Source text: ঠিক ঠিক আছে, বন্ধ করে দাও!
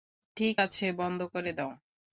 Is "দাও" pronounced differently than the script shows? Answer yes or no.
no